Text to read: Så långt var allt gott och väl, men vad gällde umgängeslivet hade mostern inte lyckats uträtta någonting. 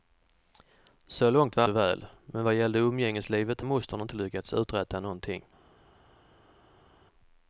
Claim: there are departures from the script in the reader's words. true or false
true